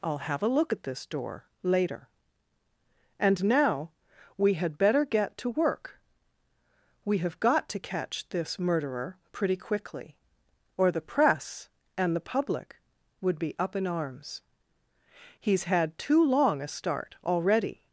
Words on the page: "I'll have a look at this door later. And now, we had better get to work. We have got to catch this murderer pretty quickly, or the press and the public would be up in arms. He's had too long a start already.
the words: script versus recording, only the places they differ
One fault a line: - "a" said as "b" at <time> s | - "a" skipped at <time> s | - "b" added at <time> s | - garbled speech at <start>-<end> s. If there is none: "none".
none